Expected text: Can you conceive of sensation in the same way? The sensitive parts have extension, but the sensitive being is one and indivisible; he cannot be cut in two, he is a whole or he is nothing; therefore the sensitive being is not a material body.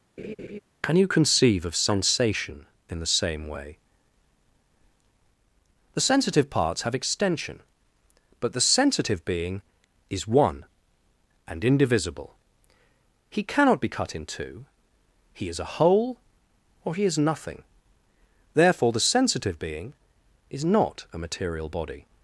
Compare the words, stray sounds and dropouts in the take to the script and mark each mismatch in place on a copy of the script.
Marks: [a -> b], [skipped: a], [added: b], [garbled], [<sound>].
[laugh] Can you conceive of sensation in the same way? The sensitive parts have extension, but the sensitive being is one and indivisible; he cannot be cut in two, he is a whole or he is nothing; therefore the sensitive being is not a material body.